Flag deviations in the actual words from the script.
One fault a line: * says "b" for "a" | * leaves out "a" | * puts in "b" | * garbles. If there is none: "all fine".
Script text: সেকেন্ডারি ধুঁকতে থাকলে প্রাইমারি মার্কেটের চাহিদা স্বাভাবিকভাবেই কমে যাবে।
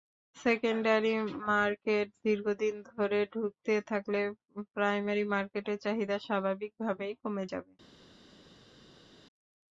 * puts in "মার্কেট দীর্ঘদিন ধরে"